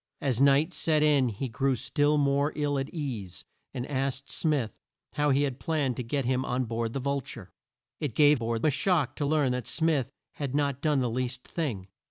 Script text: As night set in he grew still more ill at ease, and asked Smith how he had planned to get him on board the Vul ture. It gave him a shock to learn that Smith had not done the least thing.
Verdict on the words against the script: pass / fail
fail